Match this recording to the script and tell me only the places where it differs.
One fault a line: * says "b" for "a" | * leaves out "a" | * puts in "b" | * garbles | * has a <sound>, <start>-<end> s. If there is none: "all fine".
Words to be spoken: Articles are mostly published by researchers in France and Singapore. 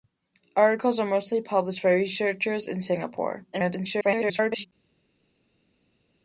* leaves out "in France"
* garbles